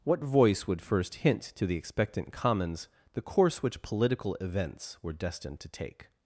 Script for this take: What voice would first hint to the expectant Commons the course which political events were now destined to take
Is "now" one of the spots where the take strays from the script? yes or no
yes